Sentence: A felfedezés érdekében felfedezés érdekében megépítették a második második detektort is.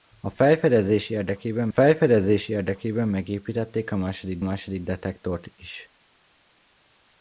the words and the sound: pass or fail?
pass